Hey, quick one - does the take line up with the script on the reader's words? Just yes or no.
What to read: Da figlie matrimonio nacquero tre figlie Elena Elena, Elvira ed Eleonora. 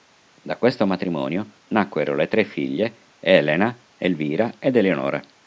no